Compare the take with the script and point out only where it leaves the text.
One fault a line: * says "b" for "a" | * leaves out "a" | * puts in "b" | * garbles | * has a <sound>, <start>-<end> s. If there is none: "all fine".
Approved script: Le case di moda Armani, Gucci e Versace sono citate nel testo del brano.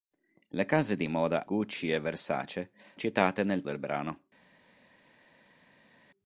* leaves out "Armani"
* leaves out "sono"
* leaves out "testo"